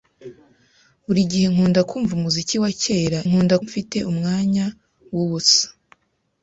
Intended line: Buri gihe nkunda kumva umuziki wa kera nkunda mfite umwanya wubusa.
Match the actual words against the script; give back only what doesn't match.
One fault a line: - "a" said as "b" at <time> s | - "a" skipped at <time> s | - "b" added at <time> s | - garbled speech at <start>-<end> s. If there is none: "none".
none